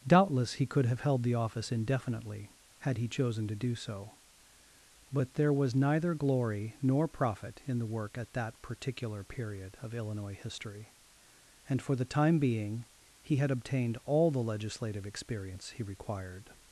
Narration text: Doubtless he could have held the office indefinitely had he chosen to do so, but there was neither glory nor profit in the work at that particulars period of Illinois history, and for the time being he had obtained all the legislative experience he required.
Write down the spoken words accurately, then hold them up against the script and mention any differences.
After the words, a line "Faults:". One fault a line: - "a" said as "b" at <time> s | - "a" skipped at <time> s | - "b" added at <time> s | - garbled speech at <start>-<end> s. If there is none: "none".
Doubtless he could have held the office indefinitely had he chosen to do so, but there was neither glory nor profit in the work at that particular period of Illinois history, and for the time being he had obtained all the legislative experience he required.
Faults:
- "particulars" said as "particular" at 8.6 s